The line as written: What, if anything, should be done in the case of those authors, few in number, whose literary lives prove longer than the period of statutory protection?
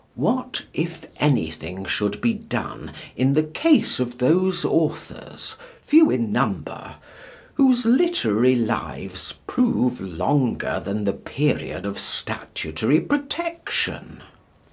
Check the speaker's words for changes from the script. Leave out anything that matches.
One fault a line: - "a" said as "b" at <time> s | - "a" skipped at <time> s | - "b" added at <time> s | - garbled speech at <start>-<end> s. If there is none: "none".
none